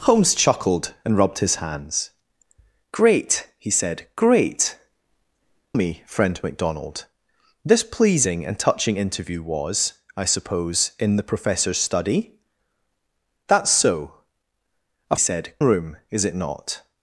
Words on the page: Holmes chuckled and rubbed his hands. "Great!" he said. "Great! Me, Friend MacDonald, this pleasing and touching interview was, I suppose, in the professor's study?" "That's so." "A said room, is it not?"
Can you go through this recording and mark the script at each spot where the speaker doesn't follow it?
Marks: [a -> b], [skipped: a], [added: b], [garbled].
Holmes chuckled and rubbed his hands. "Great!" he said. "Great! Me, Friend MacDonald, this pleasing and touching interview was, I suppose, in the professor's study?" "That's so." "A said room, is it not?"